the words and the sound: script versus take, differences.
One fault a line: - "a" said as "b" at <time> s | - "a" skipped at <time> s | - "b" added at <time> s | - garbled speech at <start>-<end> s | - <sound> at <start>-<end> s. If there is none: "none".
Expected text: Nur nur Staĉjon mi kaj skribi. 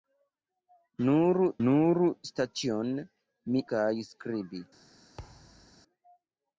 - thud at 5.2-5.8 s